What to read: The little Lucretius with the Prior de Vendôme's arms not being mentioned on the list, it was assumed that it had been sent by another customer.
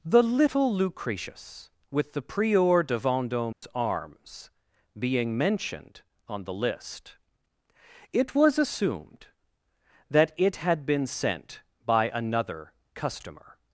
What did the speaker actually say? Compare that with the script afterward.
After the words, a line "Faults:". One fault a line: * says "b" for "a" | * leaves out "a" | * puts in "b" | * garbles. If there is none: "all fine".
The little Lucretius with the Prior de Vendôme's arms being mentioned on the list, it was assumed that it had been sent by another customer.
Faults:
* leaves out "not"